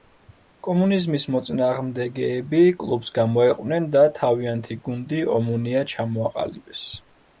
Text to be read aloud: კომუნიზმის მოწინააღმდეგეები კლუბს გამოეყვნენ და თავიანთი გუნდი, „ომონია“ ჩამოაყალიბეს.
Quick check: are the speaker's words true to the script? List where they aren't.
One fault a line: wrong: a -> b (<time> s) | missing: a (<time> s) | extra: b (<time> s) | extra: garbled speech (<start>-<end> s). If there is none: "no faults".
no faults